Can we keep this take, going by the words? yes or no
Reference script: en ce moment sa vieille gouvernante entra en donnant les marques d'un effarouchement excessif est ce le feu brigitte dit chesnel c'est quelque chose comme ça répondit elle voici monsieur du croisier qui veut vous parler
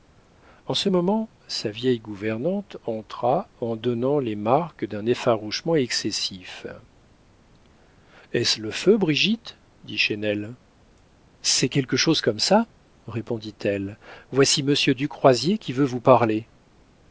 yes